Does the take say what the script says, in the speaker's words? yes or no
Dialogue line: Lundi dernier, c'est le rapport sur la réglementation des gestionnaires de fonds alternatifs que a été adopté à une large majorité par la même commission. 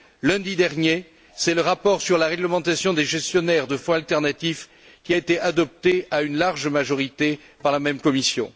no